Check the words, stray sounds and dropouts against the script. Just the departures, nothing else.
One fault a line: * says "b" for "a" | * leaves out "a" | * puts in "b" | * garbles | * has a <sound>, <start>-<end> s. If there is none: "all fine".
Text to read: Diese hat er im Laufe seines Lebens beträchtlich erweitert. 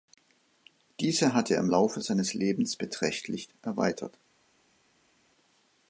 all fine